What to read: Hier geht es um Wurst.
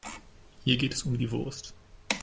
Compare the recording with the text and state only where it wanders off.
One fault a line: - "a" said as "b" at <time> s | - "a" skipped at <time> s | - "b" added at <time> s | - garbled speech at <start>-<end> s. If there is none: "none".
- "die" added at 1.1 s